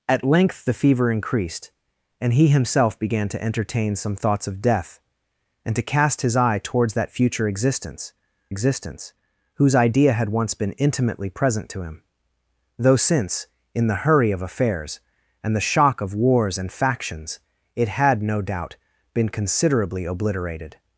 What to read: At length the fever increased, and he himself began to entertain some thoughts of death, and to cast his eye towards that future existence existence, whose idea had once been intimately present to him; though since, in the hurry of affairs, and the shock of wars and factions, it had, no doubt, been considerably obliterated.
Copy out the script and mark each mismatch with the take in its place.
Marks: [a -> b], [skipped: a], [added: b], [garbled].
At length the fever increased, and he himself began to entertain some thoughts of death, and to cast his eye towards that future existence existence, whose idea had once been intimately present to him; though since, in the hurry of affairs, and the shock of wars and factions, it had, no doubt, been considerably obliterated.